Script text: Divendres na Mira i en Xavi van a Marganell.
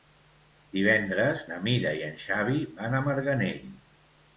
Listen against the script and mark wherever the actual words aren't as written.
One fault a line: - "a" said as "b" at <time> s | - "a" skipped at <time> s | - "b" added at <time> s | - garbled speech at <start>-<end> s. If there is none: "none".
none